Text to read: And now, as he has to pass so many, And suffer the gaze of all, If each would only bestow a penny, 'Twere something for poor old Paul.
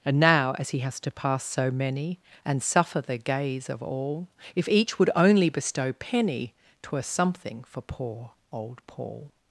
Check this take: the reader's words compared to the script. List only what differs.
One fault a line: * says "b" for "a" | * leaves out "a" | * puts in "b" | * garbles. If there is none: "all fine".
* leaves out "a"